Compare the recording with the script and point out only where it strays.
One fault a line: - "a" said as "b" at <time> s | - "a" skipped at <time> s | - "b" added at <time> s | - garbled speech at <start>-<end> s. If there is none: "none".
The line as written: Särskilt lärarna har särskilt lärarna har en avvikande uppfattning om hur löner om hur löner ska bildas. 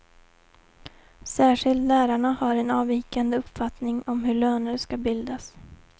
- "särskilt lärarna har" skipped at 2.5 s
- "om hur löner" skipped at 4.8 s